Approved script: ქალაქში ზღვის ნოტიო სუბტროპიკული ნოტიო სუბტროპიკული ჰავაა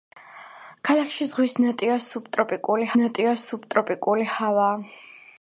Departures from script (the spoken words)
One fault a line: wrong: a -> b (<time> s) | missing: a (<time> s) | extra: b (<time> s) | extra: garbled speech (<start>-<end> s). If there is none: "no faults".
no faults